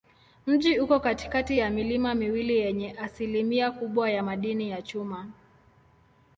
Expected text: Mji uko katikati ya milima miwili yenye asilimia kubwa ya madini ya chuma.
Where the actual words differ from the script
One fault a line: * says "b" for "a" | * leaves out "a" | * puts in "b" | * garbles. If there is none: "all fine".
all fine